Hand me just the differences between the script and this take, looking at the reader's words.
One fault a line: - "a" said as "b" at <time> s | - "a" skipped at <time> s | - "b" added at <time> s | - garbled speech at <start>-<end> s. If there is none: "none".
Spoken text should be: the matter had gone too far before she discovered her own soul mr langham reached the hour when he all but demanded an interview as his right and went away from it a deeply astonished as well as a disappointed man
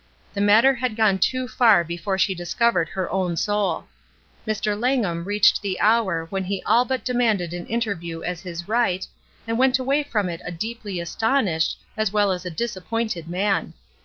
none